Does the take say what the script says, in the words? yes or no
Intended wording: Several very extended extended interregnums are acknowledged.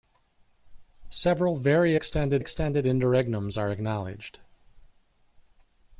yes